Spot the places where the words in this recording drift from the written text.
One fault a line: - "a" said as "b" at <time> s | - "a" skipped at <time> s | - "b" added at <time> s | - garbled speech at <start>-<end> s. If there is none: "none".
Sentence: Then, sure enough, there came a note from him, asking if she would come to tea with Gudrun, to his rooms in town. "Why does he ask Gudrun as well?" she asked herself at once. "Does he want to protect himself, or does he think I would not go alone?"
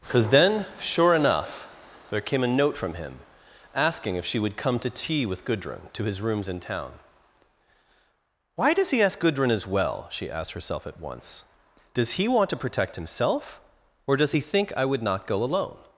- "for" added at 0.0 s